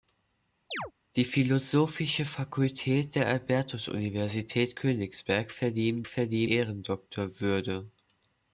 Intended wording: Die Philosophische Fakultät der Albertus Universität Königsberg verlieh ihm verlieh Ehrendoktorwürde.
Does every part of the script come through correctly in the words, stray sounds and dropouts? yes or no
no